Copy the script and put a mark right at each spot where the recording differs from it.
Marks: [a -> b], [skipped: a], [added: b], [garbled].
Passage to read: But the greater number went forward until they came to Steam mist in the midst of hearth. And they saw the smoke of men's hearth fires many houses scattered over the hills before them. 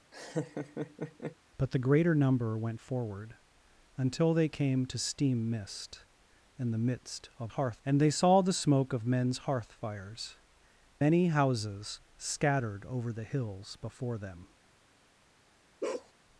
But the greater number went forward until they came to Steam mist in the midst of hearth. And they saw the smoke of men's hearth fires many houses scattered over the hills before them.